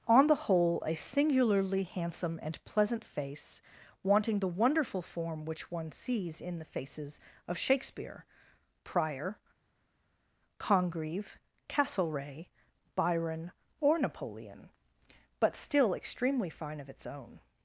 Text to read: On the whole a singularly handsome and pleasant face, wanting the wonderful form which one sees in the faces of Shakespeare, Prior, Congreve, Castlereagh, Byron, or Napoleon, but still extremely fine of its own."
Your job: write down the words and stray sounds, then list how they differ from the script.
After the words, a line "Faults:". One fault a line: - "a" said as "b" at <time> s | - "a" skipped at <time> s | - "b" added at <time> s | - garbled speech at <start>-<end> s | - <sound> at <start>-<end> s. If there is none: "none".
On the whole a singularly handsome and pleasant face, wanting the wonderful form which one sees in the faces of Shakespeare, Prior, Congreve, Castlereagh, Byron, or Napoleon, but still extremely fine of its own."
Faults:
none